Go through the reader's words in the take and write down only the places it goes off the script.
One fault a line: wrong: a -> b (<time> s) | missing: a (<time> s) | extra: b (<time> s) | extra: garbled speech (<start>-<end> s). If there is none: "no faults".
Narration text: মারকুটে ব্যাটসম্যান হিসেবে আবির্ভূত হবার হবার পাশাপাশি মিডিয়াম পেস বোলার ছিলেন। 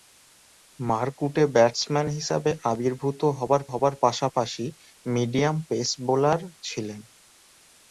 no faults